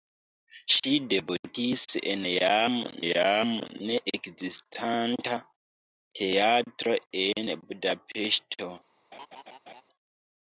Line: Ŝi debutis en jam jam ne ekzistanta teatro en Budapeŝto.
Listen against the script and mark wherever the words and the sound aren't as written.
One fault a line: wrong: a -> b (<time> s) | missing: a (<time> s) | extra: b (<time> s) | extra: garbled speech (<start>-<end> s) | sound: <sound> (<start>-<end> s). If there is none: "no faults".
sound: laugh (9.1-9.8 s)